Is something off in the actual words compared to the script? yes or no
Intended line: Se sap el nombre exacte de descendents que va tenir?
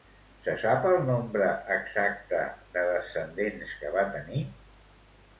no